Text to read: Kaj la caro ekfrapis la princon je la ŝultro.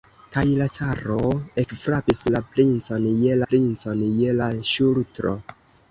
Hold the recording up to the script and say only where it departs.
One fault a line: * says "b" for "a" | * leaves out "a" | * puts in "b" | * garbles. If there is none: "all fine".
* puts in "princon je"